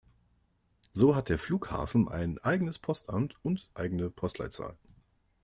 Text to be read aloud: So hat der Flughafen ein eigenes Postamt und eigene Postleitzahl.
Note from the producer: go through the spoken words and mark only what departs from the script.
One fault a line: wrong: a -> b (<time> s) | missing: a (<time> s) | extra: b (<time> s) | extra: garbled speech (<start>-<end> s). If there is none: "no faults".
no faults